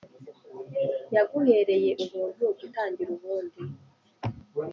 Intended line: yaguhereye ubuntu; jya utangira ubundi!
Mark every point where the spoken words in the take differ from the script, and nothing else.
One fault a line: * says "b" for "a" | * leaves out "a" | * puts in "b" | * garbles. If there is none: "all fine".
all fine